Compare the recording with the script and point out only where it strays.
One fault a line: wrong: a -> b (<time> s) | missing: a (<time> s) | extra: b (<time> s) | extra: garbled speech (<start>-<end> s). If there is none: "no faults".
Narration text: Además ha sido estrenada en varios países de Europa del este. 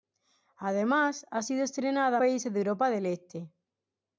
missing: en varios (2.2 s)